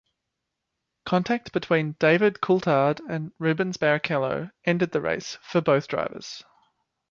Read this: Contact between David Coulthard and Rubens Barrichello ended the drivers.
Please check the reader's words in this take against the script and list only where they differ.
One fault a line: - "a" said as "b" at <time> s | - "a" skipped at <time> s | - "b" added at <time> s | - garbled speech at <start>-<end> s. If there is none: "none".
- "race for both" added at 5.0 s